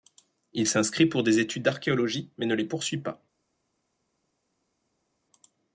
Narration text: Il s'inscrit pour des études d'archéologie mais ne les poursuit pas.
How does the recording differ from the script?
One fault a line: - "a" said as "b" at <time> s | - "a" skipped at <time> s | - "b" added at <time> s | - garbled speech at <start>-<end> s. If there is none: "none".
none